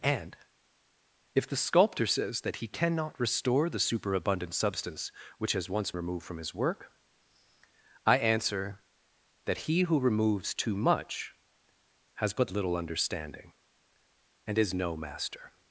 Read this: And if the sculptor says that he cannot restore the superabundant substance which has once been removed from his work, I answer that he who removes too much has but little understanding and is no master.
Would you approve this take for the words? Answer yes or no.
no